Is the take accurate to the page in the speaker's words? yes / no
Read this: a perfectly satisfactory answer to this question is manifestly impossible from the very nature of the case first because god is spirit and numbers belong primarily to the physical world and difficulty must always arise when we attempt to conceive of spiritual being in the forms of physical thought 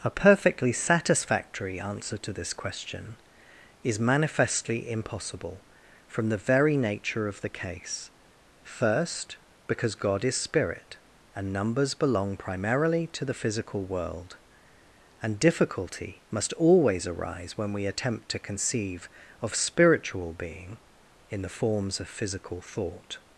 yes